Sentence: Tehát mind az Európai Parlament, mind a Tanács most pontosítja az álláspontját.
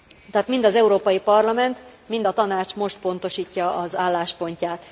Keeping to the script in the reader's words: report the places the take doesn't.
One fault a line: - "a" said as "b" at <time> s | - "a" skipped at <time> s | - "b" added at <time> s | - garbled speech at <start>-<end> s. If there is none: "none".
none